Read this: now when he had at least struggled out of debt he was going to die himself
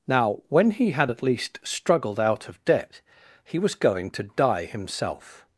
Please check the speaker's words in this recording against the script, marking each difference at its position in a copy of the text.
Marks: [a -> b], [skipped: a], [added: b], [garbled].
now when he had at least struggled out of debt he was going to die himself